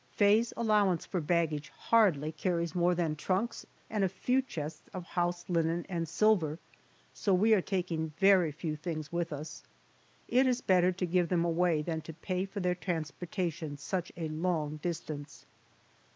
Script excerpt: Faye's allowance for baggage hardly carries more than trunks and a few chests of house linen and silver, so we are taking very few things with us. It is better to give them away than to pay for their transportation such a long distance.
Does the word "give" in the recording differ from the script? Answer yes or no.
no